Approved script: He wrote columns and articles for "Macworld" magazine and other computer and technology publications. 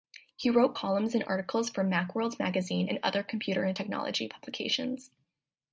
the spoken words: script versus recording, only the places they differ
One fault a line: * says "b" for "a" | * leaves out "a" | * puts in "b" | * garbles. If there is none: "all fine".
all fine